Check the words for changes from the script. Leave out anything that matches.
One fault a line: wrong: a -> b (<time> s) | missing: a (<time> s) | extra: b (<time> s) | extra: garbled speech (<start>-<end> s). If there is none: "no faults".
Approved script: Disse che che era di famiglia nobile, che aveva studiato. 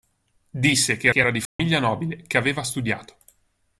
no faults